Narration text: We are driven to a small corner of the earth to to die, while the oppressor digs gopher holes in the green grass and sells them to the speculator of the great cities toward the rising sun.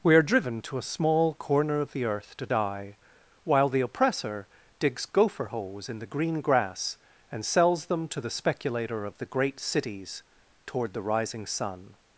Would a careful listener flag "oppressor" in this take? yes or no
no